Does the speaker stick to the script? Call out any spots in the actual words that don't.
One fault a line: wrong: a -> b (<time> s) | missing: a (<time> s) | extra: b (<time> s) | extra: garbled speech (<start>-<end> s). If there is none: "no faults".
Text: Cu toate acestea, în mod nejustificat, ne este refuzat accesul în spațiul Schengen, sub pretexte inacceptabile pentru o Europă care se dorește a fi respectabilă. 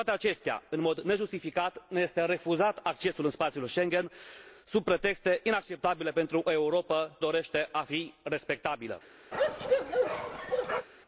missing: care se (7.2 s)